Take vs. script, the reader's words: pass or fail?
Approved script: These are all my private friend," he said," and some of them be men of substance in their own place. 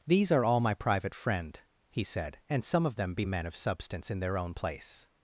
pass